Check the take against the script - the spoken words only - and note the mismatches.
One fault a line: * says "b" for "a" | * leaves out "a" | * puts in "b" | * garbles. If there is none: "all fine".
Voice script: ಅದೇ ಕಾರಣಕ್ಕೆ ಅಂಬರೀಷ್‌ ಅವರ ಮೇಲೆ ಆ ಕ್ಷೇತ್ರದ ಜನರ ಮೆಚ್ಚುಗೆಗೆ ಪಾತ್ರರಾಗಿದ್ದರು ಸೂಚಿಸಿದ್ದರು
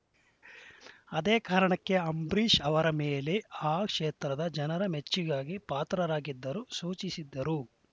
all fine